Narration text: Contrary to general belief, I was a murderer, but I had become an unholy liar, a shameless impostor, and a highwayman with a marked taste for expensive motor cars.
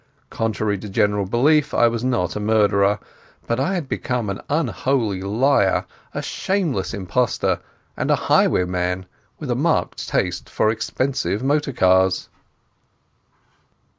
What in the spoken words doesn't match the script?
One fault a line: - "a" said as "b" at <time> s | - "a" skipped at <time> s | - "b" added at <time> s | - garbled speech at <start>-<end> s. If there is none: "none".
- "not" added at 2.0 s